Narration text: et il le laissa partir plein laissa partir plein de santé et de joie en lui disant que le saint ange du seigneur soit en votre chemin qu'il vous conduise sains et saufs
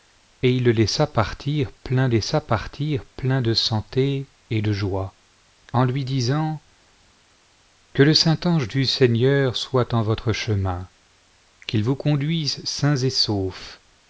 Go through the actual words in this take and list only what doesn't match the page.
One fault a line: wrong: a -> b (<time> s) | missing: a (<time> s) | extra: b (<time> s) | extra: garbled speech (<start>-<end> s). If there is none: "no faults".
no faults